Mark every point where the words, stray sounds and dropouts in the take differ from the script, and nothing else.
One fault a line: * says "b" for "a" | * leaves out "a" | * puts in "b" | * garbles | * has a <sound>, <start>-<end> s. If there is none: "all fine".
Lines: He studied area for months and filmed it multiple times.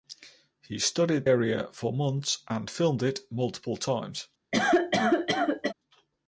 * has a cough, 4.5-5.7 s